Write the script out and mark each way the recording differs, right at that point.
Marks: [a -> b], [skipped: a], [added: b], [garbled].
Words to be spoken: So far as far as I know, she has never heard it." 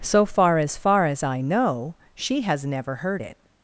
So far as far as I know, she has never heard it."